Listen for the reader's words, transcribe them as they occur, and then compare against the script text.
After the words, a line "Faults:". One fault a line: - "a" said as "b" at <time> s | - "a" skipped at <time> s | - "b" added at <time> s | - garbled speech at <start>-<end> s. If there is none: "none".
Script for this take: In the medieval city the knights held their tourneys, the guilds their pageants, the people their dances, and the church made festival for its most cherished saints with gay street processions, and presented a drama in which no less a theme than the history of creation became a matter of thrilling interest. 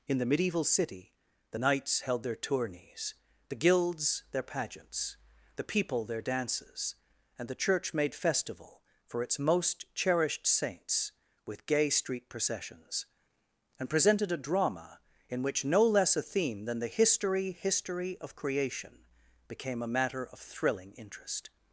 In the medieval city the knights held their tourneys, the guilds their pageants, the people their dances, and the church made festival for its most cherished saints with gay street processions, and presented a drama in which no less a theme than the history history of creation became a matter of thrilling interest.
Faults:
- "history" added at 17.5 s